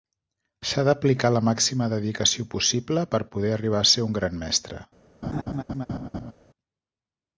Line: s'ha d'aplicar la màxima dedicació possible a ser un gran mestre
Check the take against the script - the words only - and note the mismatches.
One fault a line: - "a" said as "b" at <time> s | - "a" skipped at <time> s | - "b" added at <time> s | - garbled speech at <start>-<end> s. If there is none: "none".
- "per poder arribar" added at 3.1 s